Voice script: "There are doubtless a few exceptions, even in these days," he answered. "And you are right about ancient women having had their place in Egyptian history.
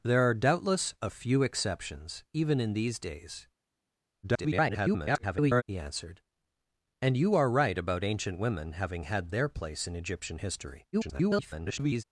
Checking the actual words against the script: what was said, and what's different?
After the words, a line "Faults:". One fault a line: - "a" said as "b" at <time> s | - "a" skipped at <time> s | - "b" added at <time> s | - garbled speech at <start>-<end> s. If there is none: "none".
"There are doubtless a few exceptions, even in these days," [garbled] he answered. "And you are right about ancient women having had their place in Egyptian history. [garbled]
Faults:
- garbled speech at 4.2-5.6 s
- garbled speech at 10.9-12.0 s